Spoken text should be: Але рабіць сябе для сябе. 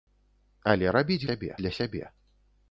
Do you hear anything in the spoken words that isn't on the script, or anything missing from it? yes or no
no